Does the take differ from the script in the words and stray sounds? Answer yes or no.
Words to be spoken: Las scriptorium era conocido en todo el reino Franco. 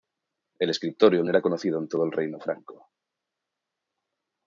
yes